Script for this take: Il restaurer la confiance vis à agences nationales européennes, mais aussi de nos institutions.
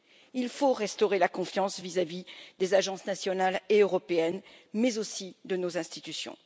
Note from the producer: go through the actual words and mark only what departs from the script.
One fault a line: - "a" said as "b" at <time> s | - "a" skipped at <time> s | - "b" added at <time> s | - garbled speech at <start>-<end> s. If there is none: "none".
- "faut" added at 0.5 s
- "vis des" added at 2.1 s
- "et" added at 3.7 s